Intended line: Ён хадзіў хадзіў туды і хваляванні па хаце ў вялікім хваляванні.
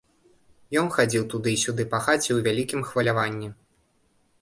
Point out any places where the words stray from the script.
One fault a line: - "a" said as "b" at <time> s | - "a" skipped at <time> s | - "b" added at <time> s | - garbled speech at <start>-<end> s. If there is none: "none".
- "хадзіў" skipped at 1.3 s
- "хваляванні" said as "сюды" at 1.6 s